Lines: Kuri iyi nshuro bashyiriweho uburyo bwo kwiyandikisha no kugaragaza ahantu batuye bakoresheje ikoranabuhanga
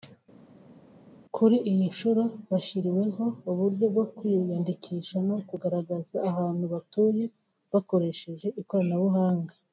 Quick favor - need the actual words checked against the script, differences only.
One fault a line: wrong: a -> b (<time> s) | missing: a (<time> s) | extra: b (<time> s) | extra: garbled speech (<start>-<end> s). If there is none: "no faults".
no faults